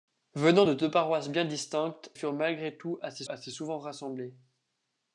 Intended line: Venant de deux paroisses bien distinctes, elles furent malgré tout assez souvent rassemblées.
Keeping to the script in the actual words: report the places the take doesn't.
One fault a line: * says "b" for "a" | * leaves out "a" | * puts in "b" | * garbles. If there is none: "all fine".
* leaves out "elles"
* puts in "assez"